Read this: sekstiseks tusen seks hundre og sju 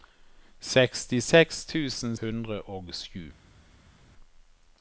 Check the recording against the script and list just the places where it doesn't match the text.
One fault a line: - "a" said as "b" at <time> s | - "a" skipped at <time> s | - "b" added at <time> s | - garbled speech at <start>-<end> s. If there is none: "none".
- "seks" skipped at 2.2 s